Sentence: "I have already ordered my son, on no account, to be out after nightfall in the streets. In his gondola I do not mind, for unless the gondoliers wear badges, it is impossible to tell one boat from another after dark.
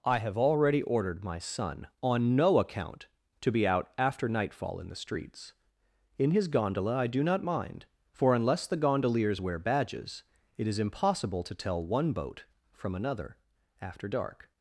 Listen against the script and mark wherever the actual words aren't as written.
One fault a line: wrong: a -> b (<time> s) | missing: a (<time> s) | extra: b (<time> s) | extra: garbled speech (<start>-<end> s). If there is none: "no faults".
no faults